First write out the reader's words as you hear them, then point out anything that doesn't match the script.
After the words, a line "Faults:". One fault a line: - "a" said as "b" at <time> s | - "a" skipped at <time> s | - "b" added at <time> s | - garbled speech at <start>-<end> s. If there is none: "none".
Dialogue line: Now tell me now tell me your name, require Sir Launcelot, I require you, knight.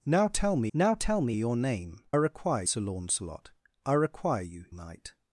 Now tell me now tell me your name, require Sir Launcelot, I require you, knight.
Faults:
none